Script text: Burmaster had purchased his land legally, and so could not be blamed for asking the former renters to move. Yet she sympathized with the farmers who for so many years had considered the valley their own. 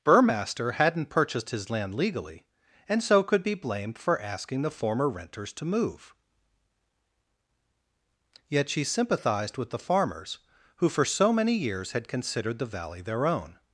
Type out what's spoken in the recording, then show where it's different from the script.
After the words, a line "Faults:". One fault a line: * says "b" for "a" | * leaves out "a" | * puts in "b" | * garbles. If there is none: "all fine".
Burmaster hadn't purchased his land legally, and so could be blamed for asking the former renters to move. Yet she sympathized with the farmers who for so many years had considered the valley their own.
Faults:
* says "hadn't" for "had"
* leaves out "not"